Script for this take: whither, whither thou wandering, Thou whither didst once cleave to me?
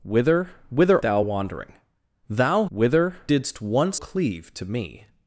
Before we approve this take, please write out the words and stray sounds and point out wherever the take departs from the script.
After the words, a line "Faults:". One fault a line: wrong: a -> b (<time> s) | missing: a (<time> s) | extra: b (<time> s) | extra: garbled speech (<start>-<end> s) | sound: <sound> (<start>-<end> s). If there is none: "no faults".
whither, whither thou wandering, Thou whither didst once cleave to me?
Faults:
no faults